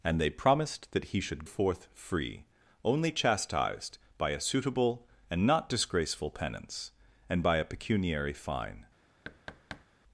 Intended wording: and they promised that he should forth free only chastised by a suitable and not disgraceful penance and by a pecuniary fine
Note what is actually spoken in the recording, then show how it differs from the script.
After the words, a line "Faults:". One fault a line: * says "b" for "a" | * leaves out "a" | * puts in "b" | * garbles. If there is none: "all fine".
and they promised that he should forth free only chastised by a suitable and not disgraceful penance and by a pecuniary fine
Faults:
all fine